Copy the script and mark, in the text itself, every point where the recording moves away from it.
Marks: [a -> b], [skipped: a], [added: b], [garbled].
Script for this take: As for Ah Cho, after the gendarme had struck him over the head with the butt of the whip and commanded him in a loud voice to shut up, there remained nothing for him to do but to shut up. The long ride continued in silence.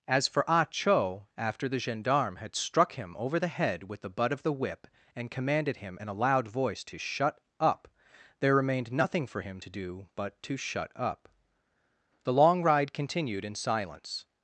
As for Ah Cho, after the gendarme had struck him over the head with the butt of the whip and commanded him in a loud voice to shut up, there remained nothing for him to do but to shut up. The long ride continued in silence.